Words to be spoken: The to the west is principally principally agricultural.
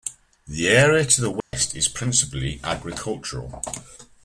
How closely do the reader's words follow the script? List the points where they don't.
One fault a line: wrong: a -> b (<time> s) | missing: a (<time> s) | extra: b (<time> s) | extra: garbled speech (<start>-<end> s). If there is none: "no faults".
extra: area (0.7 s)
missing: principally (2.6 s)